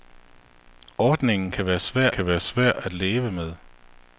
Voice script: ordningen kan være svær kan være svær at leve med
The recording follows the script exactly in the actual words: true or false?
true